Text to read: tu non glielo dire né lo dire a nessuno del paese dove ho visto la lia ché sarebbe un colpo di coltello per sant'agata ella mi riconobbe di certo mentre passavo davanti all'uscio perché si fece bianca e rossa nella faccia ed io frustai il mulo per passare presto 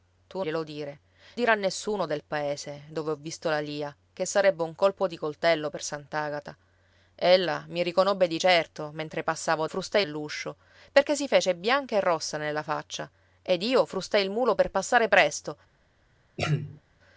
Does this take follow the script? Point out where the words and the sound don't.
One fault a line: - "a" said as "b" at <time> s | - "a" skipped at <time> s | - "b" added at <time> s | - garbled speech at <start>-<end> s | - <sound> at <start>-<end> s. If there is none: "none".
- "non" skipped at 0.4 s
- "né lo" skipped at 1.0 s
- "davanti" said as "frustai" at 9.7 s
- throat clearing at 16.4-16.8 s